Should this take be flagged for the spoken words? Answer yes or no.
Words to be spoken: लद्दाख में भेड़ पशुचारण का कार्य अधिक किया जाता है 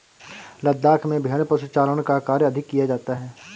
no